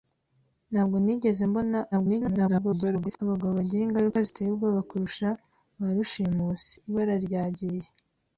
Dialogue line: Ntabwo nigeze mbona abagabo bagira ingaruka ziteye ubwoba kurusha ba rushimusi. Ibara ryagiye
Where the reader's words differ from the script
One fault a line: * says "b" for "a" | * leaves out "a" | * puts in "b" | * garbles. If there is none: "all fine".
* garbles